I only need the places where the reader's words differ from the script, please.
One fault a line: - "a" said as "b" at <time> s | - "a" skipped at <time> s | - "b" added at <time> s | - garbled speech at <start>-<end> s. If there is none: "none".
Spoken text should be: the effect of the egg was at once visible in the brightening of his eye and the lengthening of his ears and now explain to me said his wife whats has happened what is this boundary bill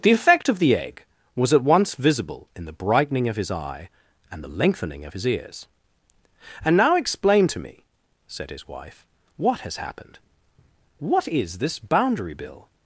- "whats" said as "what" at 9.4 s